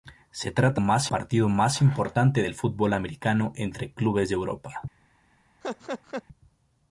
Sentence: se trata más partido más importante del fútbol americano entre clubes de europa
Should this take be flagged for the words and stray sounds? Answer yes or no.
yes